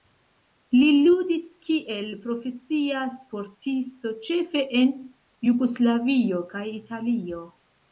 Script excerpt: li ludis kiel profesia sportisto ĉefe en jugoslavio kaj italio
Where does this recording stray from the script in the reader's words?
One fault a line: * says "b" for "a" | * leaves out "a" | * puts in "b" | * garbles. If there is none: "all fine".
all fine